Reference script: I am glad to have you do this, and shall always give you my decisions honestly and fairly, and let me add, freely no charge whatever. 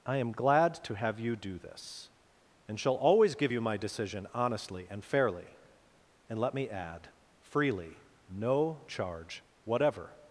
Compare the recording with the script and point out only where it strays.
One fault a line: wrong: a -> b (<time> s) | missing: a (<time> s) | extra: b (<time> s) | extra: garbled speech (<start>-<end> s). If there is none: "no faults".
wrong: decisions -> decision (3.8 s)